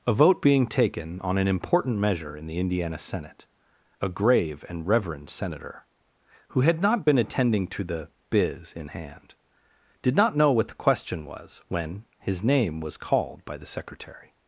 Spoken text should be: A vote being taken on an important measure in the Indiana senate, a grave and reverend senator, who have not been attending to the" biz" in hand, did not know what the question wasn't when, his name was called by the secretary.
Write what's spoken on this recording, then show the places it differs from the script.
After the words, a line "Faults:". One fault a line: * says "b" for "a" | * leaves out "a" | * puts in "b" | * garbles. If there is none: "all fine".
A vote being taken on an important measure in the Indiana senate, a grave and reverend senator, who had not been attending to the" biz" in hand, did not know what the question was when, his name was called by the secretary.
Faults:
* says "had" for "have"
* says "was" for "wasn't"